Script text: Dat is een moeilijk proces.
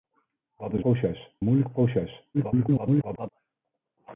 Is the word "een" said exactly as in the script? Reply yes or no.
no